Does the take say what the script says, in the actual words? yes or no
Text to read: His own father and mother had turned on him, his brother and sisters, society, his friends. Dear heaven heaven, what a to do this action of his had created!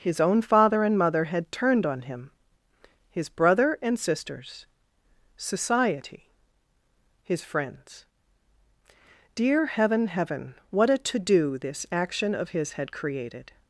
yes